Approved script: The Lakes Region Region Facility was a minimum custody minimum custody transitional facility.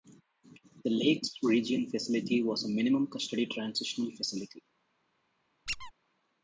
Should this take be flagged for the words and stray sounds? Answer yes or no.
yes